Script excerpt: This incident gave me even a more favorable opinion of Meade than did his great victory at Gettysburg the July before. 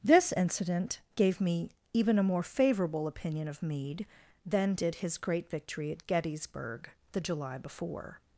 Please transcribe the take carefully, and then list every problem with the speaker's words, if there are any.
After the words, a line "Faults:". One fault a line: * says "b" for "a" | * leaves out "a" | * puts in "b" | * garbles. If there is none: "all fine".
This incident gave me even a more favorable opinion of Meade than did his great victory at Gettysburg the July before.
Faults:
all fine